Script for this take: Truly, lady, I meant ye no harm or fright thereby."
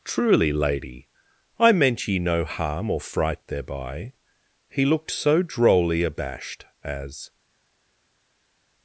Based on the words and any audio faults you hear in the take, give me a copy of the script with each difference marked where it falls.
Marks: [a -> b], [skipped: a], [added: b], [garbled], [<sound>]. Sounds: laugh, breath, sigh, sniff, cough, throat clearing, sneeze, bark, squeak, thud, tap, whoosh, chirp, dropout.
Truly, lady, I meant ye no harm or fright thereby." [added: He looked so drolly abashed as]